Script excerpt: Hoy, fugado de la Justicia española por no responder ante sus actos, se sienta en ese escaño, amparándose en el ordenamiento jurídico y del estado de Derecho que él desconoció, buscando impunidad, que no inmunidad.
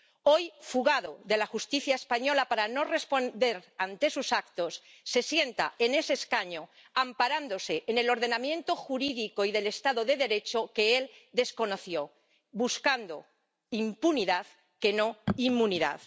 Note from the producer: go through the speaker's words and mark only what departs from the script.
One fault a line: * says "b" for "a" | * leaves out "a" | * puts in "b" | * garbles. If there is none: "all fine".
* says "para" for "por"